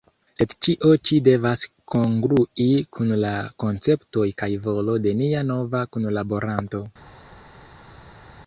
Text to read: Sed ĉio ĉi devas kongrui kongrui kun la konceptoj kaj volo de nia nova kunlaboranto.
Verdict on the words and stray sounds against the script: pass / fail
fail